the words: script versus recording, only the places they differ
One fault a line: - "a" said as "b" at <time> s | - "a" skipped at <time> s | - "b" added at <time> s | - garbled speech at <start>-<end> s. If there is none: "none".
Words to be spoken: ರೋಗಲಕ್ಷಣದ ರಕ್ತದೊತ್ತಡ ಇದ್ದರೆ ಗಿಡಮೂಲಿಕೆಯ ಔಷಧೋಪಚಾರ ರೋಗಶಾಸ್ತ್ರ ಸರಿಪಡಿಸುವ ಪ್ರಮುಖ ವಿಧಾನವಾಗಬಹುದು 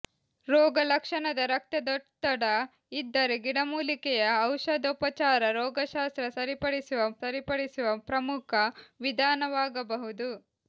- "ಸರಿಪಡಿಸುವ" added at 7.2 s